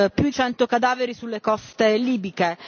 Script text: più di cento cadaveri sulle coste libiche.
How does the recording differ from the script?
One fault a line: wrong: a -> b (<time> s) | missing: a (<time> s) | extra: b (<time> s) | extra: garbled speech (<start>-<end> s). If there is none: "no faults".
missing: di (0.3 s)